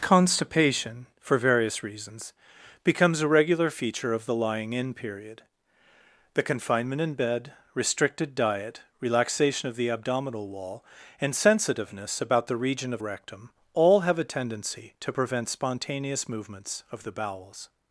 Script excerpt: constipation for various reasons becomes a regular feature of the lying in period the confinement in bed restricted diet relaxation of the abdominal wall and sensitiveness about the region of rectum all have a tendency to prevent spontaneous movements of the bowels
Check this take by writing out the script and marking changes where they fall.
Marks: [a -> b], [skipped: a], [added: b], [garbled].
constipation for various reasons becomes a regular feature of the lying in period the confinement in bed restricted diet relaxation of the abdominal wall and sensitiveness about the region of rectum all have a tendency to prevent spontaneous movements of the bowels